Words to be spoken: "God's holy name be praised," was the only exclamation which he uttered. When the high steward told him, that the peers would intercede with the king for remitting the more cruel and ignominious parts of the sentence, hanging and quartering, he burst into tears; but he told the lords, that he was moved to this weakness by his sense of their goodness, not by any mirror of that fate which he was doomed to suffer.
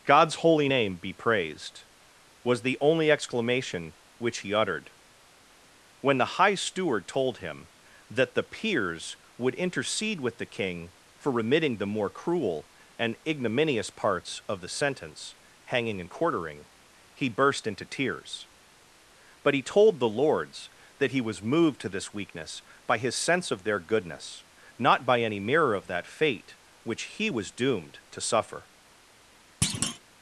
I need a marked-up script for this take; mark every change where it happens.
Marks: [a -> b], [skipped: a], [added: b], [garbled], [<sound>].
"God's holy name be praised," was the only exclamation which he uttered. When the high steward told him, that the peers would intercede with the king for remitting the more cruel and ignominious parts of the sentence, hanging and quartering, he burst into tears; but he told the lords, that he was moved to this weakness by his sense of their goodness, not by any mirror of that fate which he was doomed to suffer. [thud]